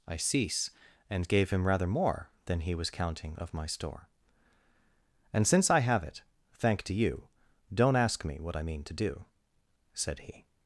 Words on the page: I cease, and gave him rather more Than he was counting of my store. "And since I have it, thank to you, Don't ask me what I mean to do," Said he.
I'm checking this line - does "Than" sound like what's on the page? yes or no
yes